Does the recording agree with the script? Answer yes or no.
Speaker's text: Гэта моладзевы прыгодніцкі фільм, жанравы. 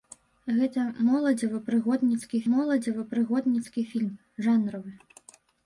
no